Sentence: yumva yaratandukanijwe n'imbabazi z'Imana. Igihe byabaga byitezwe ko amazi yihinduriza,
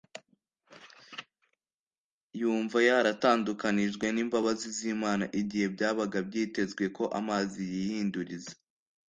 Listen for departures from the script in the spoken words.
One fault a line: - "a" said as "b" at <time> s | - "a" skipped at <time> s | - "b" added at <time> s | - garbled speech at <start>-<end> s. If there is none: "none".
none